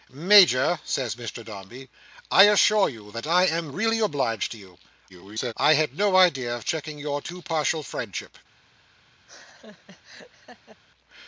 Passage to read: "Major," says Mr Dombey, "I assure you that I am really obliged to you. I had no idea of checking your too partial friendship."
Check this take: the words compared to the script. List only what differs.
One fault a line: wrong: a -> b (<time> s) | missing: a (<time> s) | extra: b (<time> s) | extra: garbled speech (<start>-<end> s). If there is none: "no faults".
extra: garbled speech (5.1-5.5 s)